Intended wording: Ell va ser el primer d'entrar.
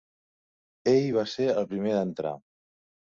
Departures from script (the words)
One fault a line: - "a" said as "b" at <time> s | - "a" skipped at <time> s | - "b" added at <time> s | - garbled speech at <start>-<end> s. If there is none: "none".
none